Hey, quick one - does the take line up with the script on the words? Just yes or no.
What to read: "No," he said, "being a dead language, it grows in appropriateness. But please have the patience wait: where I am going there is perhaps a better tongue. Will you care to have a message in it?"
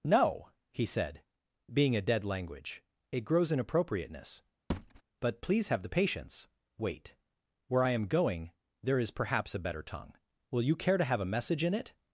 yes